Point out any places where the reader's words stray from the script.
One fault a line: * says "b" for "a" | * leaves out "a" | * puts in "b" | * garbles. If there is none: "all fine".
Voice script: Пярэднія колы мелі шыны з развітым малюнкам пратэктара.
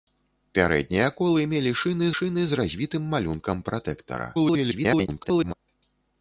* puts in "шыны"
* garbles